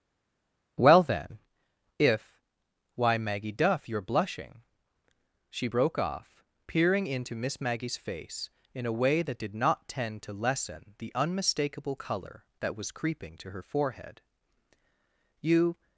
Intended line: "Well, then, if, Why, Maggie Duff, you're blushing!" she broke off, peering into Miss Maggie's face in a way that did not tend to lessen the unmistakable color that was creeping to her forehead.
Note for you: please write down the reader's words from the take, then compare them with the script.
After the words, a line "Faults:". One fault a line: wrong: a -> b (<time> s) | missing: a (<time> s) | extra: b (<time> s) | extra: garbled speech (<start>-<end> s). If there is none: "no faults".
"Well, then, if, Why, Maggie Duff, you're blushing!" she broke off, peering into Miss Maggie's face in a way that did not tend to lessen the unmistakable color that was creeping to her forehead. "You
Faults:
extra: You (15.4 s)